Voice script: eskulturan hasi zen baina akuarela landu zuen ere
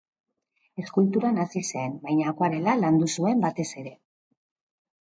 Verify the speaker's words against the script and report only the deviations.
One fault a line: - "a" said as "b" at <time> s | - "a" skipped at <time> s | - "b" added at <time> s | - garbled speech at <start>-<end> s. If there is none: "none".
- "batez" added at 3.5 s